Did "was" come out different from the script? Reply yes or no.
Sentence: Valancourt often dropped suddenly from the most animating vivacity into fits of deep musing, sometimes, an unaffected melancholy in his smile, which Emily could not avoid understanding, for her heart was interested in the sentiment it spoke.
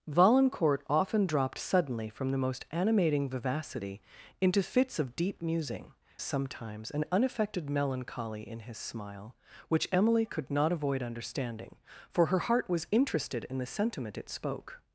no